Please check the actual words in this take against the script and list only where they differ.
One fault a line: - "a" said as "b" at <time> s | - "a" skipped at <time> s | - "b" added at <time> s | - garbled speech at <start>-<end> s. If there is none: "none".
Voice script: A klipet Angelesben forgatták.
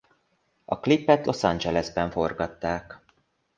- "Los" added at 1.2 s